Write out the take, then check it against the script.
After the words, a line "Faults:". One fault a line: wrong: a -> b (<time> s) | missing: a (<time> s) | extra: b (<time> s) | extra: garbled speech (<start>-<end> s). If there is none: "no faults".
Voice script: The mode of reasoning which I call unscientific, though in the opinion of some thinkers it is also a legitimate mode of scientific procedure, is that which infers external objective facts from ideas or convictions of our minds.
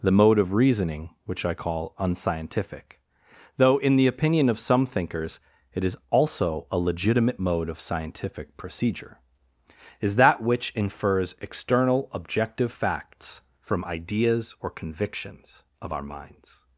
The mode of reasoning which I call unscientific, though in the opinion of some thinkers it is also a legitimate mode of scientific procedure, is that which infers external objective facts from ideas or convictions of our minds.
Faults:
no faults